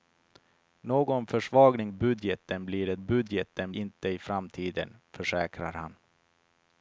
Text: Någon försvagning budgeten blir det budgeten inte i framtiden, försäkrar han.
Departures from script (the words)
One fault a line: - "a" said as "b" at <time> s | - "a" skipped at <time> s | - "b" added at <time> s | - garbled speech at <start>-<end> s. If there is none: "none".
none